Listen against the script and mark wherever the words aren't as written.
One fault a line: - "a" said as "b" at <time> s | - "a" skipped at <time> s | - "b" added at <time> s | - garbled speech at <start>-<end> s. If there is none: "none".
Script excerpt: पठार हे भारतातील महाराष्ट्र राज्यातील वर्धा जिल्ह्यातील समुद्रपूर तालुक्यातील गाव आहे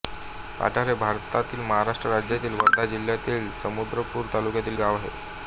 none